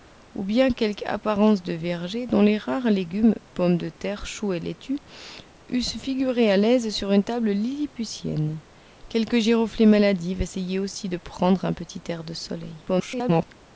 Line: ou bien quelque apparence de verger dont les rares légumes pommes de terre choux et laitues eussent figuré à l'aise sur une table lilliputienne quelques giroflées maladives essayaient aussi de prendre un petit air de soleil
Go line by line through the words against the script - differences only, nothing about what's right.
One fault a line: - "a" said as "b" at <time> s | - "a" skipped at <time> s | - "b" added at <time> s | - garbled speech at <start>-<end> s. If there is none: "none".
- garbled speech at 12.9-13.5 s